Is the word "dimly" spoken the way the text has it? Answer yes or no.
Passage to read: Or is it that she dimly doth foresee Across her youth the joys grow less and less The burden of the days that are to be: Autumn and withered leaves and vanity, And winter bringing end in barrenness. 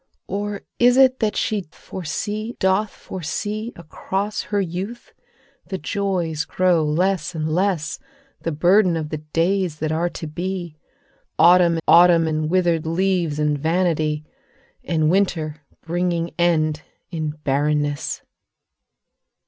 no